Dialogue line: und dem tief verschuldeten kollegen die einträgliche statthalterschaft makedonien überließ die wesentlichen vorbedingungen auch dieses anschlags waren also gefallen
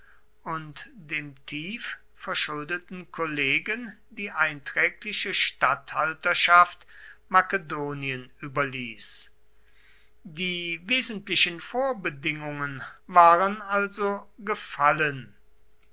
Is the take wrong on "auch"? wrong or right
wrong